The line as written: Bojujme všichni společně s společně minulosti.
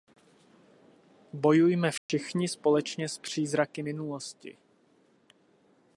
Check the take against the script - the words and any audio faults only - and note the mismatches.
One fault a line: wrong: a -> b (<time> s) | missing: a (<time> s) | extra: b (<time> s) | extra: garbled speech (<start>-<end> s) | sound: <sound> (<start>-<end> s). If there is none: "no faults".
sound: dropout (2.0-2.1 s)
wrong: společně -> přízraky (3.2 s)